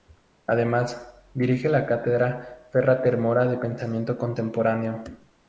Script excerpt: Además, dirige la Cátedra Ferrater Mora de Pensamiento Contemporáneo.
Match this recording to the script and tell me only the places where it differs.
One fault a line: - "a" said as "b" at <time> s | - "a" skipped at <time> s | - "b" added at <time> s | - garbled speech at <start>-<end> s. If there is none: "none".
none